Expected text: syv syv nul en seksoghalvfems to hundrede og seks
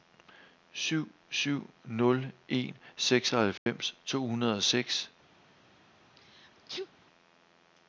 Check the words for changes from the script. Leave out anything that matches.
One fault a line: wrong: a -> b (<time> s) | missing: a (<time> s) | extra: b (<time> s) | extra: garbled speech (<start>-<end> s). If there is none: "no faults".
no faults